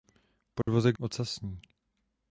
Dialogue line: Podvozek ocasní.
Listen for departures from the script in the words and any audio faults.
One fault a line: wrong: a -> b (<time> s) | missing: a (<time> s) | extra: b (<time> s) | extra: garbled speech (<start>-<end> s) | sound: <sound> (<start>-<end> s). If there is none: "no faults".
sound: dropout (0.6-0.7 s)